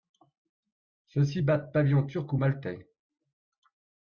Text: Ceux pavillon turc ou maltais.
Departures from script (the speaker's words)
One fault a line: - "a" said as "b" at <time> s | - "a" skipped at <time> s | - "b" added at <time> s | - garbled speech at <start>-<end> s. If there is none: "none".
- "ci battent" added at 1.2 s